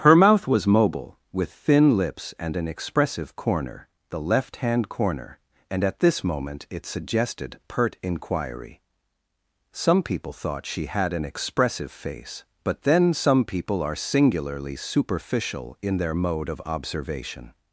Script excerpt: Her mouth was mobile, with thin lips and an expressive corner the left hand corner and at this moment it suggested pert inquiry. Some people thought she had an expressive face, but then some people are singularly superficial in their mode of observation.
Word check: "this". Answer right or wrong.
right